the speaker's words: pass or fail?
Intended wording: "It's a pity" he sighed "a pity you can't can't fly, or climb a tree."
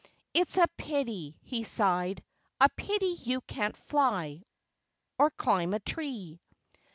fail